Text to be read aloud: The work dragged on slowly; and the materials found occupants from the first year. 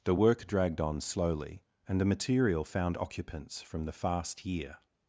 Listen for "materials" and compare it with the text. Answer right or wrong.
wrong